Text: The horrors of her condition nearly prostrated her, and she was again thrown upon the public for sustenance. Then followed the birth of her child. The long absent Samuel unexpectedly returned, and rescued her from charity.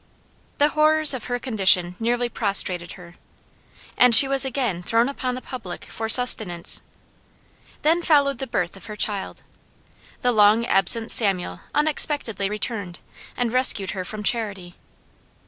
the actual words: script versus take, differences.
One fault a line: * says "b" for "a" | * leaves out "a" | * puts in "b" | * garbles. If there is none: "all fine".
all fine